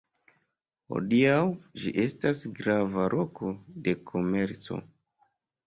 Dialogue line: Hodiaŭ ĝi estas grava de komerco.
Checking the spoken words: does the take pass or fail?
fail